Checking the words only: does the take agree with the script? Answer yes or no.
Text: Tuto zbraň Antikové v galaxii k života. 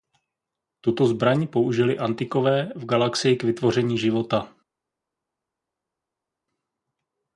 no